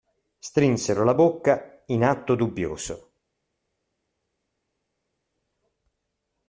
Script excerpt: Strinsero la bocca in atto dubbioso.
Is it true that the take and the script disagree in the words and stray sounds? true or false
false